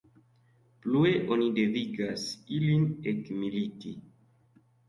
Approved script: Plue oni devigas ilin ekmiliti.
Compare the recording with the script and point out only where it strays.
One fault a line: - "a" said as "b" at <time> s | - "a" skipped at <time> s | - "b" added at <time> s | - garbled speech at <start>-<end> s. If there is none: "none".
none